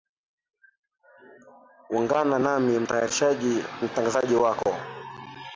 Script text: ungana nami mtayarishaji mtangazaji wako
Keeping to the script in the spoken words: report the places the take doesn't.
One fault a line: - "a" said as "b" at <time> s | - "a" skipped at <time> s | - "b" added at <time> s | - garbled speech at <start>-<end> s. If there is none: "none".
none